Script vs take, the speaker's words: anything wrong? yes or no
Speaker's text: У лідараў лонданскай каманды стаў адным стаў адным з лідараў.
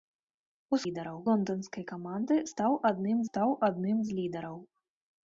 no